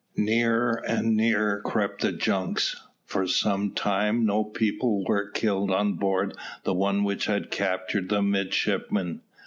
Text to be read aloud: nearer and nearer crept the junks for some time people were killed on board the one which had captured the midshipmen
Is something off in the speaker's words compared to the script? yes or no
yes